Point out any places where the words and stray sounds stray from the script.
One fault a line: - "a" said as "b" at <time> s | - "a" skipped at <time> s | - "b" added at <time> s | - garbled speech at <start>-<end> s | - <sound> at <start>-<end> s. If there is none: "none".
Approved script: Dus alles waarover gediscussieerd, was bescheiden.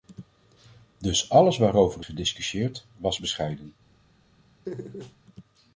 - laugh at 4.7-5.2 s